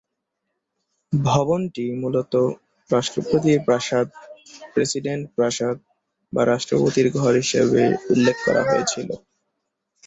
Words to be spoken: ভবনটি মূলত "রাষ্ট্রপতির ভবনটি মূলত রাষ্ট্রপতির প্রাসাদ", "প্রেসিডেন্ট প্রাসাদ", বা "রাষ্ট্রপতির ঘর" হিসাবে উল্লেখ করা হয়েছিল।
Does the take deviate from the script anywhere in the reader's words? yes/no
yes